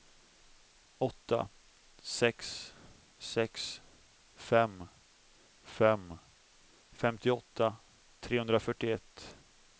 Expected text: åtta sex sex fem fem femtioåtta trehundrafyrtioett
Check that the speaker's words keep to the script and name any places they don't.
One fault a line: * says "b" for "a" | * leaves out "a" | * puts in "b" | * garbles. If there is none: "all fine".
all fine